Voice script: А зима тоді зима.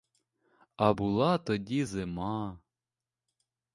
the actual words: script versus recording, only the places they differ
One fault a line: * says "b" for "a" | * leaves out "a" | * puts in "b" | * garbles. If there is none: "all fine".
* says "була" for "зима"